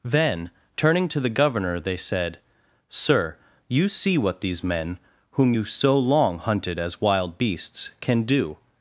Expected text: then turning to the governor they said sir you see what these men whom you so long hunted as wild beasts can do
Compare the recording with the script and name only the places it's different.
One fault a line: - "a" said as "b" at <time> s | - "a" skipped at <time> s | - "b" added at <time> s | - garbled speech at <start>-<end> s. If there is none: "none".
none